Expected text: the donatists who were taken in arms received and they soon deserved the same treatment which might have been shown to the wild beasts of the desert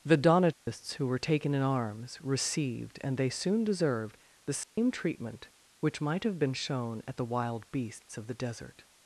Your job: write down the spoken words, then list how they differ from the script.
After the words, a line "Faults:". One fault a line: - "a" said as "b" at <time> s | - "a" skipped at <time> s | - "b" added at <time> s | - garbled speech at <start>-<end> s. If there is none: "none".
the donatists who were taken in arms received and they soon deserved the same treatment which might have been shown at the wild beasts of the desert
Faults:
- "to" said as "at" at 7.1 s